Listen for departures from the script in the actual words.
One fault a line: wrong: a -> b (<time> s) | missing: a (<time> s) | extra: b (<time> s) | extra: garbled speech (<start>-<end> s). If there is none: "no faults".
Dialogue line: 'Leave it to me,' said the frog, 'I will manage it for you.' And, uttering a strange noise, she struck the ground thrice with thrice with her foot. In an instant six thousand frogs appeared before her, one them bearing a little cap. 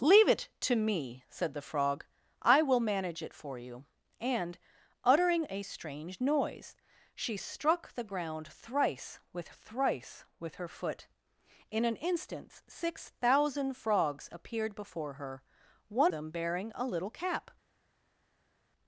no faults